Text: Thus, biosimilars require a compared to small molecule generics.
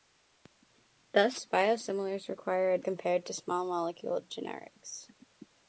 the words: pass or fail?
pass